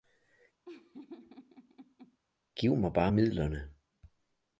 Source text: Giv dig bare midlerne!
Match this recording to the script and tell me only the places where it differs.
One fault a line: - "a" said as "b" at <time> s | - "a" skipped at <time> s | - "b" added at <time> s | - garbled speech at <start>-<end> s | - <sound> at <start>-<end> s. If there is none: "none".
- laugh at 0.6-2.2 s
- "dig" said as "mig" at 2.8 s